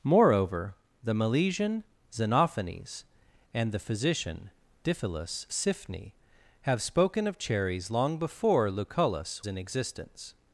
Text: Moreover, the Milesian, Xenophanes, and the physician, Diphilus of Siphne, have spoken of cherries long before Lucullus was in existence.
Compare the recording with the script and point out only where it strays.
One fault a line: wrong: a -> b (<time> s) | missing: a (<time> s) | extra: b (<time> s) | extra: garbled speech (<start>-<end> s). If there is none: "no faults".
missing: of (5.5 s)
missing: was (9.4 s)